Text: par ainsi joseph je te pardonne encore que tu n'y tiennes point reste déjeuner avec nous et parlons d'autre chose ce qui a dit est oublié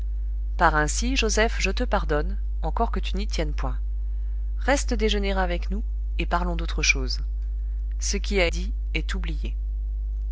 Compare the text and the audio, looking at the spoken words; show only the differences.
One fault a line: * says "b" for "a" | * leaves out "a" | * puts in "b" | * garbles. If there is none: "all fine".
all fine